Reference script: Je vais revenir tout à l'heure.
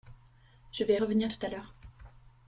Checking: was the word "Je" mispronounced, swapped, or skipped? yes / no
no